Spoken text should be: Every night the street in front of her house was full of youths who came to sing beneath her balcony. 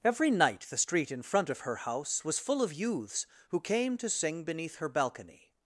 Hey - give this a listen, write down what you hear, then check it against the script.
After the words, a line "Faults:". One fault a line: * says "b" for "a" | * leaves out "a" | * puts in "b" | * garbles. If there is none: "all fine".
Every night the street in front of her house was full of youths who came to sing beneath her balcony.
Faults:
all fine